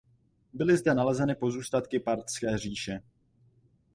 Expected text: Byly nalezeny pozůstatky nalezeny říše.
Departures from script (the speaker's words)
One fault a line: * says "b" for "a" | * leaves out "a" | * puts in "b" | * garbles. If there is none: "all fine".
* puts in "zde"
* says "parthské" for "nalezeny"